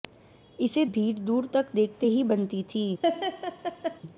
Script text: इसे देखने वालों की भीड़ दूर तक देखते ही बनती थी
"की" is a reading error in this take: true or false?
true